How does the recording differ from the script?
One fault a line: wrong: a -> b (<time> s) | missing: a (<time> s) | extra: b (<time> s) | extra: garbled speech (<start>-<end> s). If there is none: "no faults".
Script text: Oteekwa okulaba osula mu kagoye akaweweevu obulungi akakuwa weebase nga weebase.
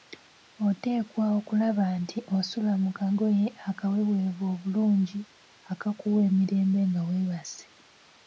extra: nti (2.0 s)
wrong: weebase -> emirembe (6.3 s)